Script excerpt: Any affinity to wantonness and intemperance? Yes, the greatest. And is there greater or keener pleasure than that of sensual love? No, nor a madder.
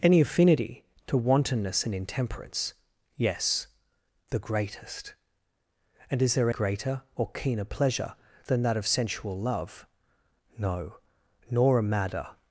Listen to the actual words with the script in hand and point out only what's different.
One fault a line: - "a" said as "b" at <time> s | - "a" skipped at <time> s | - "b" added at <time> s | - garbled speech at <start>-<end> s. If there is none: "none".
none